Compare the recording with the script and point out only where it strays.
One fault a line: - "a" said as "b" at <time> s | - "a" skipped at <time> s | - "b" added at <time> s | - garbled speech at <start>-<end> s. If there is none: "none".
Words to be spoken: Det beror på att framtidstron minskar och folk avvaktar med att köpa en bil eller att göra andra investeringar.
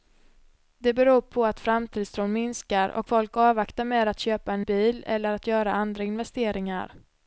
none